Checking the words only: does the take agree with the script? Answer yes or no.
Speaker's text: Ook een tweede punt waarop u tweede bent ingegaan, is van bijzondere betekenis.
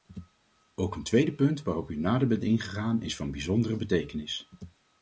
no